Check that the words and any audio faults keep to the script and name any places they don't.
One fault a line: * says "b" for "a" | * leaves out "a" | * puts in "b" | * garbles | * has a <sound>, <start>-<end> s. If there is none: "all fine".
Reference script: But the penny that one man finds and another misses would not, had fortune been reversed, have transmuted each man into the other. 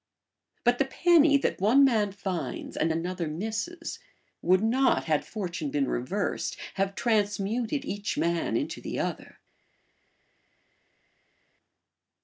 all fine